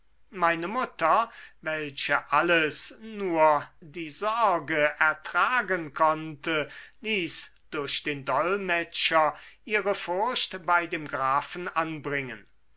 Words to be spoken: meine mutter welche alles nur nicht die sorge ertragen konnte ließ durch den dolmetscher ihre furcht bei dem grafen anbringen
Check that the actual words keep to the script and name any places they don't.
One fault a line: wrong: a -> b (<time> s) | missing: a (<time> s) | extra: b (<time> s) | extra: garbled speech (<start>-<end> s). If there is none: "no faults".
missing: nicht (3.7 s)